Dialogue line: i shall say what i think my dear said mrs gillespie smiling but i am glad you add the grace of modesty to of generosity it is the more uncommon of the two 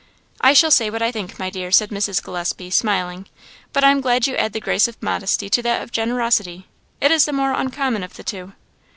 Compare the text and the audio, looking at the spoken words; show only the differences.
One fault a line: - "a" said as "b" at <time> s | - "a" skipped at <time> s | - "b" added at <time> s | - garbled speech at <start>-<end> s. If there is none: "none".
- "that" added at 5.6 s